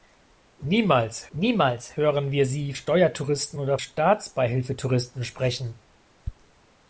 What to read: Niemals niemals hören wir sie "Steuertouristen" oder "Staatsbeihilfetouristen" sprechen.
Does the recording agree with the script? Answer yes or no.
yes